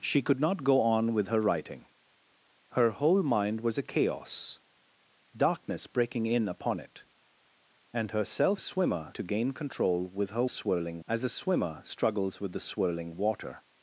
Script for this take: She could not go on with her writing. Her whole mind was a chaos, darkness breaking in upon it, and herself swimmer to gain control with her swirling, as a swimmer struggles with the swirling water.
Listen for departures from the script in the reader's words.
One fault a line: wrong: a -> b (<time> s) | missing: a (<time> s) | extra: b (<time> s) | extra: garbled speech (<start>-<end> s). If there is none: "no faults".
no faults